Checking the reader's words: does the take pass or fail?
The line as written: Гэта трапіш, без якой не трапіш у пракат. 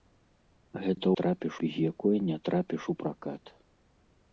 pass